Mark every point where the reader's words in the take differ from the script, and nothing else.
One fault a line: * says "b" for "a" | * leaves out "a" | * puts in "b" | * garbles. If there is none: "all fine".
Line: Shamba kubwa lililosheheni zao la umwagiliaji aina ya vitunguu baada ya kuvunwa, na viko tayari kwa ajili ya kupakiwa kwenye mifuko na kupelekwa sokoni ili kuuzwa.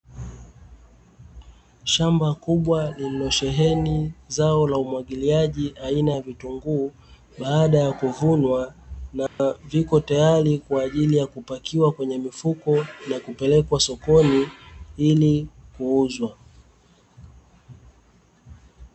all fine